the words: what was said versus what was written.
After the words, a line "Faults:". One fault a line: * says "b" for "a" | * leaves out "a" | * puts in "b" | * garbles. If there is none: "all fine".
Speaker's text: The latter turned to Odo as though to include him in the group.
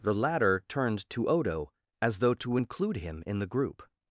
The latter turned to Odo as though to include him in the group.
Faults:
all fine